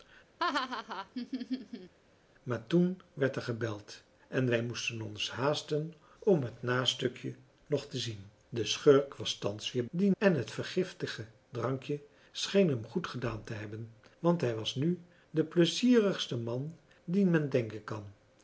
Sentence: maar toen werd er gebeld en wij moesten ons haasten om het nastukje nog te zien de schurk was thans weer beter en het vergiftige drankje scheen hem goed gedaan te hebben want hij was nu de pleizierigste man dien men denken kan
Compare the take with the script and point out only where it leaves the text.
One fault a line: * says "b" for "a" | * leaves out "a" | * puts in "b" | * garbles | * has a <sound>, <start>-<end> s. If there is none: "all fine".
* has a laugh, 0.4-1.9 s
* says "dien" for "beter"